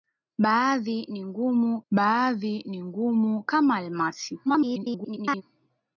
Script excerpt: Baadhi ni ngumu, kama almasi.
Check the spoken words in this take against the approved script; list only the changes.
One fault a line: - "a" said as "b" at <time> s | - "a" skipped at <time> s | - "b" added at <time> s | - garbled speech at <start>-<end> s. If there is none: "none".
- "baadhi ni ngumu" added at 1.9 s
- garbled speech at 4.5-5.4 s